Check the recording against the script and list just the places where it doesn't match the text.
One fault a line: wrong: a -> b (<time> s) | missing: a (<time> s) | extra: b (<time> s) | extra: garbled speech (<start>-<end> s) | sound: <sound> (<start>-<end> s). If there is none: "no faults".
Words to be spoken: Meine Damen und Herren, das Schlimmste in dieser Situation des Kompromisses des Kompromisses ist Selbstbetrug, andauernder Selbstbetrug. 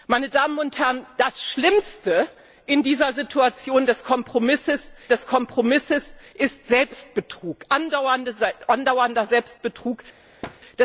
sound: thud (10.4-10.6 s)